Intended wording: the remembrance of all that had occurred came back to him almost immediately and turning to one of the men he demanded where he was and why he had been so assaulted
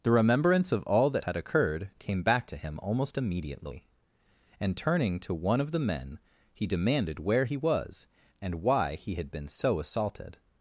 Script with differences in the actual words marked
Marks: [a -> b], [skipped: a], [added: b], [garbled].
the remembrance of all that had occurred came back to him almost immediately and turning to one of the men he demanded where he was and why he had been so assaulted